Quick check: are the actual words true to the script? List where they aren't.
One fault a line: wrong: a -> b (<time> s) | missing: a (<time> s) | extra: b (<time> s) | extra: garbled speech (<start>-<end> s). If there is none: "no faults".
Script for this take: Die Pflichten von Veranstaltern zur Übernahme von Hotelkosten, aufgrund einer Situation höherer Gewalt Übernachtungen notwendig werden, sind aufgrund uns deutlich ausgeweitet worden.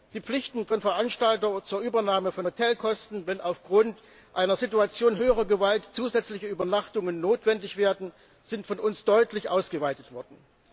extra: wenn (3.3 s)
extra: zusätzliche (5.9 s)
wrong: aufgrund -> von (8.7 s)